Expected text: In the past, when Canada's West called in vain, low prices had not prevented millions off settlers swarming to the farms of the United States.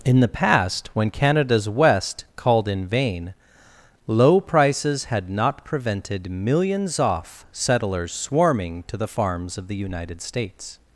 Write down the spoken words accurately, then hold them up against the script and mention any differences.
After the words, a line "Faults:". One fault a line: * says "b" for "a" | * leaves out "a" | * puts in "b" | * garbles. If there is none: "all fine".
In the past, when Canada's West called in vain, low prices had not prevented millions off settlers swarming to the farms of the United States.
Faults:
all fine